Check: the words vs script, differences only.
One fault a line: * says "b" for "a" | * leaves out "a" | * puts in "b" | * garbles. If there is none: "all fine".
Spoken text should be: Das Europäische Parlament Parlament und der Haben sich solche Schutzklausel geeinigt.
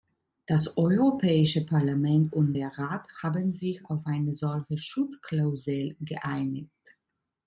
* leaves out "Parlament"
* puts in "Rat"
* puts in "auf eine"